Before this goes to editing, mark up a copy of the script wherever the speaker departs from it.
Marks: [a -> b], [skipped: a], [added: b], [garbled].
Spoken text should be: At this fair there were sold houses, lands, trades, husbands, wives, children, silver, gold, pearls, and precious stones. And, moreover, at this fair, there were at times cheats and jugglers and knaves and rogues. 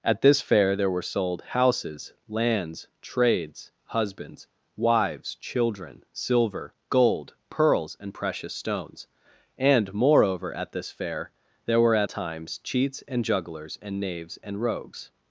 At this fair there were sold houses, lands, trades, husbands, wives, children, silver, gold, pearls, and precious stones. And, moreover, at this fair, there were at times cheats and jugglers and knaves and rogues.